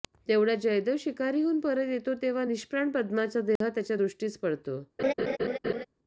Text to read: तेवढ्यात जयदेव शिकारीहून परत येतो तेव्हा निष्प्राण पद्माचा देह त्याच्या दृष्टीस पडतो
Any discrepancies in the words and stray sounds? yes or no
yes